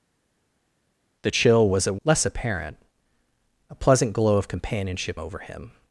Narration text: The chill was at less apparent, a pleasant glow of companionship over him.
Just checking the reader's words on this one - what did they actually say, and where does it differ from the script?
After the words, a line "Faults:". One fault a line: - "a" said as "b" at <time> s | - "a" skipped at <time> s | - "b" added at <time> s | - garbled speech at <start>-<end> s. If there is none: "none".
The chill was at less apparent, a pleasant glow of companionship over him.
Faults:
none